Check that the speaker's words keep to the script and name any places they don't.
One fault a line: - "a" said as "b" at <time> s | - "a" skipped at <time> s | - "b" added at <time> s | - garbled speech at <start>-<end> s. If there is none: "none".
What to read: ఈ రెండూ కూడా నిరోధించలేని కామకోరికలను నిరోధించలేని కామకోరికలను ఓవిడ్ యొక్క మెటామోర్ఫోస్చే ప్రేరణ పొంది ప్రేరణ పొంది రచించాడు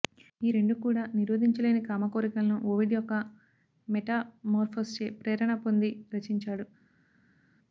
- "నిరోధించలేని కామకోరికలను" skipped at 2.6 s
- "ప్రేరణ పొంది" skipped at 5.9 s